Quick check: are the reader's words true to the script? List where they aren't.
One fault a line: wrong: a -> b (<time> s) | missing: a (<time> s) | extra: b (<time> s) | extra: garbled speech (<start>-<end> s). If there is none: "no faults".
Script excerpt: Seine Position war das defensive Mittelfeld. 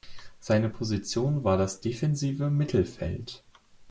no faults